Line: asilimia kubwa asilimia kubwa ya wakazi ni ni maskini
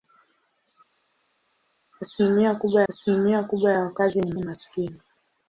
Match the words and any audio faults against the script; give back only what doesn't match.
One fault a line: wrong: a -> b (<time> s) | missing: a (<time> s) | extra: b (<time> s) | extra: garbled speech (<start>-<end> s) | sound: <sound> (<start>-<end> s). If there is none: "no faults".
no faults